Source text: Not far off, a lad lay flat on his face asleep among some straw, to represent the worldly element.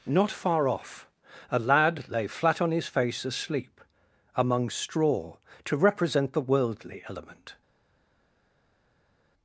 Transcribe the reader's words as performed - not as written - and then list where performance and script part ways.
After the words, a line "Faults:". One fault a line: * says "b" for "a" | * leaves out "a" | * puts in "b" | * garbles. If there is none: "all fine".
Not far off, a lad lay flat on his face asleep among straw, to represent the worldly element.
Faults:
* leaves out "some"